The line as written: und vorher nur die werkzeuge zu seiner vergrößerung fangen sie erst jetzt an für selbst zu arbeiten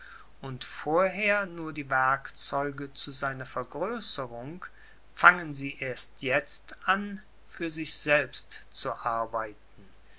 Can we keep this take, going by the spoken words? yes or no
no